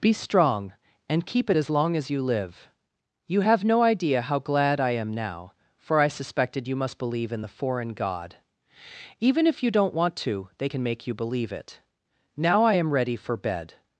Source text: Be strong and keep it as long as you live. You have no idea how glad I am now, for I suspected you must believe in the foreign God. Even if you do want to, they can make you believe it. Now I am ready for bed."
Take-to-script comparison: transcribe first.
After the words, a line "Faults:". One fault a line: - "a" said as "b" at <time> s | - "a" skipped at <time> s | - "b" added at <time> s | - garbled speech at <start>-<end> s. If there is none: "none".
Be strong and keep it as long as you live. You have no idea how glad I am now, for I suspected you must believe in the foreign God. Even if you don't want to, they can make you believe it. Now I am ready for bed."
Faults:
- "do" said as "don't" at 9.7 s